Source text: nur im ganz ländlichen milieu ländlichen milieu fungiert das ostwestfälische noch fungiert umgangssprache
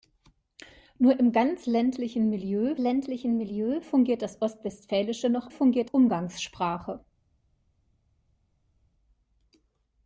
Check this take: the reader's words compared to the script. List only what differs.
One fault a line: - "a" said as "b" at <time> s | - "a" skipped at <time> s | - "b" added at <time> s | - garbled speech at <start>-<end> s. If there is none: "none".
none